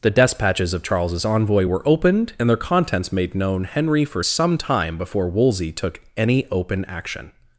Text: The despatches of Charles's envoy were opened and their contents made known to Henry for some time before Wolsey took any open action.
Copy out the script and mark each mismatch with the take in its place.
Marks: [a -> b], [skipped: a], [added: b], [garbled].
The despatches of Charles's envoy were opened and their contents made known [skipped: to] Henry for some time before Wolsey took any open action.